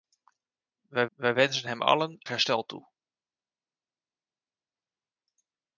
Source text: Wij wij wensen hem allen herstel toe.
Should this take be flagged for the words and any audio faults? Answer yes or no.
no